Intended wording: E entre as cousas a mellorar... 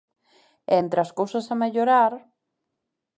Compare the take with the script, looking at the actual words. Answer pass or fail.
pass